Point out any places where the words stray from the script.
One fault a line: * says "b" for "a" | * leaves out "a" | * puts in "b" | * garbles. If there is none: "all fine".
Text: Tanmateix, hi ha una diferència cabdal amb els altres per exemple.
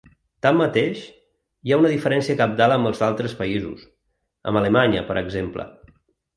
* puts in "països amb Alemanya"